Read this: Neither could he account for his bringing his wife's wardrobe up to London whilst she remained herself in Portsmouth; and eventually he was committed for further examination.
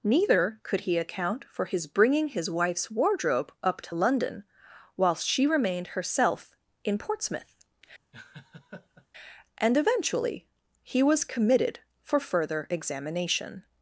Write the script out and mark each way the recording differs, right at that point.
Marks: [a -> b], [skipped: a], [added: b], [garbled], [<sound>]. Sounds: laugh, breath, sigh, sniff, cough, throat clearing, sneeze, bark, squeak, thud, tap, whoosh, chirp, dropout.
Neither could he account for his bringing his wife's wardrobe up to London whilst she remained herself in Portsmouth; [laugh] and eventually he was committed for further examination.